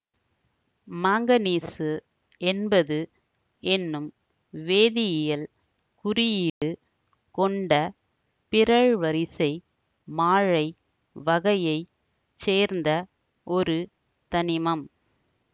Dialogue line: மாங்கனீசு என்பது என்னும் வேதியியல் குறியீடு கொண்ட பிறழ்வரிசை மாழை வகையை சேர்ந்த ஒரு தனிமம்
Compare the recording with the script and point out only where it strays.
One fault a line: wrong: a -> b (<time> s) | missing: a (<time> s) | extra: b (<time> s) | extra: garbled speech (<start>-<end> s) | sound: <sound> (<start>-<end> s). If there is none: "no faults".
sound: dropout (6.5-6.6 s)